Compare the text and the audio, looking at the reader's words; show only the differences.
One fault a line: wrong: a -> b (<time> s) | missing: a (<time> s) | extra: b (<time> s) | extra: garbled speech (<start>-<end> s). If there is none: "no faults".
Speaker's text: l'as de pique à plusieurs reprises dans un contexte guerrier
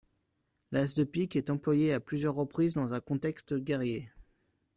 extra: est employé (1.4 s)